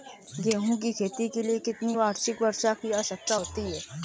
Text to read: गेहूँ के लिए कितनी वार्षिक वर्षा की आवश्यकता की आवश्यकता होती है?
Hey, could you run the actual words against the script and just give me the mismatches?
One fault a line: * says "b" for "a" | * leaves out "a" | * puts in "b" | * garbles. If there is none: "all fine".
* puts in "की खेती"
* leaves out "की आवश्यकता"